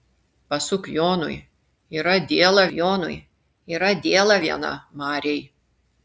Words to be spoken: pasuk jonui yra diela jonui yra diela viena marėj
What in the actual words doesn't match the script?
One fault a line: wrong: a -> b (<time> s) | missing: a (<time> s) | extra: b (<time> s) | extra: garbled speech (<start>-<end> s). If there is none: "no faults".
no faults